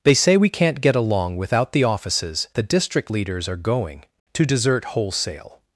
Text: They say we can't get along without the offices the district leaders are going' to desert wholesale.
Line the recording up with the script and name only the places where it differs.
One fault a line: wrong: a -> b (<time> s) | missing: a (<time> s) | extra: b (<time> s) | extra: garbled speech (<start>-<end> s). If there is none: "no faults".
no faults